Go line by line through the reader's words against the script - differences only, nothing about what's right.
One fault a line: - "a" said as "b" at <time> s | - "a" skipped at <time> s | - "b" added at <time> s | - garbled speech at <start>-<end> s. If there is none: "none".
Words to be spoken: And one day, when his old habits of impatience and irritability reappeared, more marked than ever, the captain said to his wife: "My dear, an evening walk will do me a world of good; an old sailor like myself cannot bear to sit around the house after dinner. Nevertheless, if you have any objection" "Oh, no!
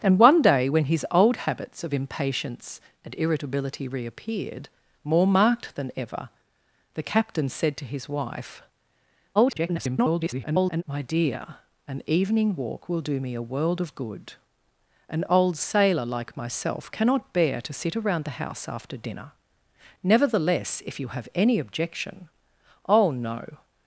- garbled speech at 9.4-10.8 s